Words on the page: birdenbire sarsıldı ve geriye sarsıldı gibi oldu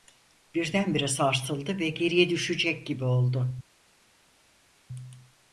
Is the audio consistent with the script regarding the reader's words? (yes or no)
no